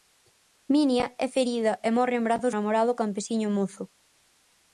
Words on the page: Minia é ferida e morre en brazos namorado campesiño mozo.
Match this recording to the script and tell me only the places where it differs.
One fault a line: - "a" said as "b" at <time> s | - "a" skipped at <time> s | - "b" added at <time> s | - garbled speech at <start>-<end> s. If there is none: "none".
none